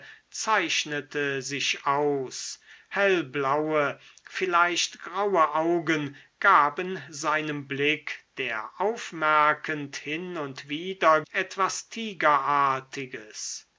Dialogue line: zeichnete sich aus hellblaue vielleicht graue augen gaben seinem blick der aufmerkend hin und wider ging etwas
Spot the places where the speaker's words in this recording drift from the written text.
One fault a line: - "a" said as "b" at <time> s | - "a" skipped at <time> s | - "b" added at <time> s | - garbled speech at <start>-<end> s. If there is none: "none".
- "ging" skipped at 11.2 s